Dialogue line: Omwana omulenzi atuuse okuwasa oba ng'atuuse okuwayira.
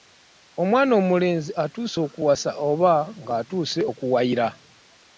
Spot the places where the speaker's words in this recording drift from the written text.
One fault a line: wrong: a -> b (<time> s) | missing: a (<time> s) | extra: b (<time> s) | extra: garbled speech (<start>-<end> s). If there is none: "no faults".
no faults